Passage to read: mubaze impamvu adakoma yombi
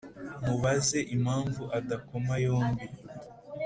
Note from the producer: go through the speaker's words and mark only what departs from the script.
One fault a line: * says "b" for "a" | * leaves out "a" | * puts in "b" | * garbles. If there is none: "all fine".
all fine